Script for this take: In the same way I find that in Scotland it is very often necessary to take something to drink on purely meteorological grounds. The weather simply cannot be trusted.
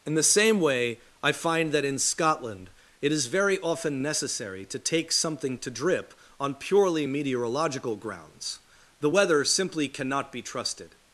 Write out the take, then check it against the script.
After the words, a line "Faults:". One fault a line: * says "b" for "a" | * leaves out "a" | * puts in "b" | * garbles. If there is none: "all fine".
In the same way I find that in Scotland it is very often necessary to take something to drip on purely meteorological grounds. The weather simply cannot be trusted.
Faults:
* says "drip" for "drink"